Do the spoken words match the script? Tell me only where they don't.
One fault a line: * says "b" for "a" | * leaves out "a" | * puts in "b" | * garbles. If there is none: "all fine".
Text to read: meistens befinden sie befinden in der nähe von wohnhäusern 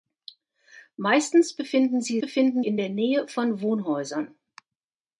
all fine